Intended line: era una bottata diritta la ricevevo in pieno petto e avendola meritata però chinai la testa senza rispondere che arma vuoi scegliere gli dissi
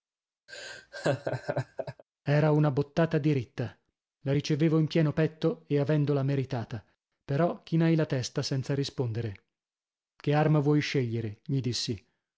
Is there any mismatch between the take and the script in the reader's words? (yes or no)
no